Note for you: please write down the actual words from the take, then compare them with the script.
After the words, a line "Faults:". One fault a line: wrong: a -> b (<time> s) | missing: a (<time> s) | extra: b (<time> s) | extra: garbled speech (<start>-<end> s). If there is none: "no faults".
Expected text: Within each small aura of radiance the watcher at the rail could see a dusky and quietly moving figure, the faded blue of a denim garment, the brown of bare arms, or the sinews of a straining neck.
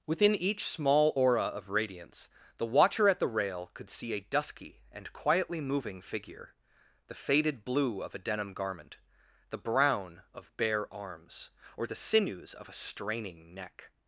Within each small aura of radiance the watcher at the rail could see a dusky and quietly moving figure, the faded blue of a denim garment, the brown of bare arms, or the sinews of a straining neck.
Faults:
no faults